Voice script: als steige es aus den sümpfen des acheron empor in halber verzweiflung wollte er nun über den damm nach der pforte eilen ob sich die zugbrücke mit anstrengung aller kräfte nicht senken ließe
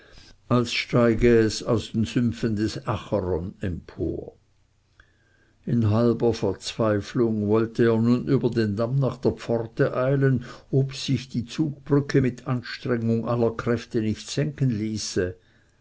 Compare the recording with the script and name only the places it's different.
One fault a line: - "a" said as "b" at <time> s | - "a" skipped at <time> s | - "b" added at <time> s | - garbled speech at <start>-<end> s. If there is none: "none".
none